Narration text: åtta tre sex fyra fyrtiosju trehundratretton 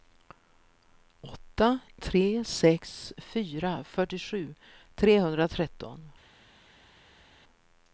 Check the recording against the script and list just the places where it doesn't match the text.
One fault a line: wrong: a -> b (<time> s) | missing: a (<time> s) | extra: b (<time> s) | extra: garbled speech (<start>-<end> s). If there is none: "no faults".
no faults